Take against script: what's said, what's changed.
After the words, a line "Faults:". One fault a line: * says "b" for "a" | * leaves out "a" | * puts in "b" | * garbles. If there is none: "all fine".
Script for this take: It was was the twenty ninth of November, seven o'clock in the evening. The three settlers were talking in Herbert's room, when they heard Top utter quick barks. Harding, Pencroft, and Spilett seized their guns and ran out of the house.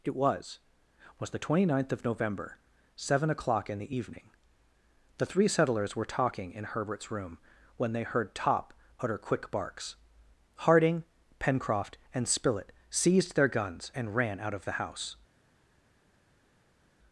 It was was the twenty ninth of November, seven o'clock in the evening. The three settlers were talking in Herbert's room, when they heard Top utter quick barks. Harding, Pencroft, and Spilett seized their guns and ran out of the house.
Faults:
all fine